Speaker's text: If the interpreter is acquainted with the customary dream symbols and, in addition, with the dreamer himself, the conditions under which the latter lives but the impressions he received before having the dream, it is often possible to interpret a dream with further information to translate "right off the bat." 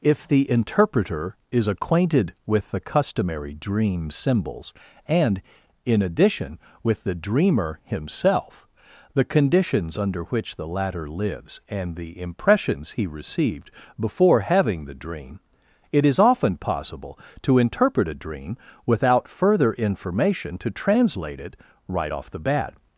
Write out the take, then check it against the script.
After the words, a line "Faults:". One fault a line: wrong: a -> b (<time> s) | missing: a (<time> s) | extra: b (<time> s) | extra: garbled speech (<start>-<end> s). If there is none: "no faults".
If the interpreter is acquainted with the customary dream symbols and, in addition, with the dreamer himself, the conditions under which the latter lives and the impressions he received before having the dream, it is often possible to interpret a dream without further information to translate it "right off the bat."
Faults:
wrong: but -> and (11.7 s)
wrong: with -> without (18.9 s)
extra: it (21.4 s)